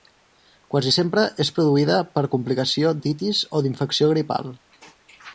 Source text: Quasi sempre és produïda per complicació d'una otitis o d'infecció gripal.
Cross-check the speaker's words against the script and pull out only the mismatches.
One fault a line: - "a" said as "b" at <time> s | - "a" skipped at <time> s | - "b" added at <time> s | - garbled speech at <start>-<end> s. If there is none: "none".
- "d'una" skipped at 2.9 s